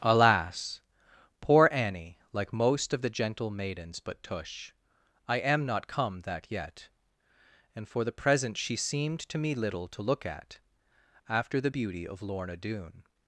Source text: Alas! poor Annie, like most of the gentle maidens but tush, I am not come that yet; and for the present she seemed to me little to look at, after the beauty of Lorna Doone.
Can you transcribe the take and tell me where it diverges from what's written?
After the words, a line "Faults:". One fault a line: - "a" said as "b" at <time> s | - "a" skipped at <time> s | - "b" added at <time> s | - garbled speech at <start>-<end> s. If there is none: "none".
Alas! poor Annie, like most of the gentle maidens but tush, I am not come that yet; and for the present she seemed to me little to look at, after the beauty of Lorna Doone.
Faults:
none